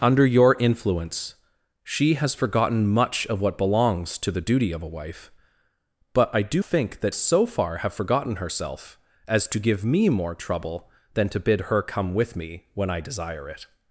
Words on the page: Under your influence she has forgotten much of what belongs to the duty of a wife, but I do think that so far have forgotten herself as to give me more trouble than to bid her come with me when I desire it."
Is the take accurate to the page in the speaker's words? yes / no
yes